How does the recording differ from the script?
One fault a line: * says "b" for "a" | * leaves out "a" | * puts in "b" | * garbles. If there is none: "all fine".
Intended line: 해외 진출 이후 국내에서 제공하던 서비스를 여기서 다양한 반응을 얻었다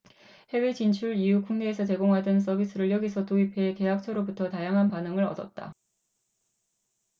* puts in "도입해 계약처로부터"